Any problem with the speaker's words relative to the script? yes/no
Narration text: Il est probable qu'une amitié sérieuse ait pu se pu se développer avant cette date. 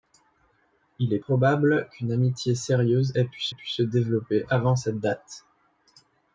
no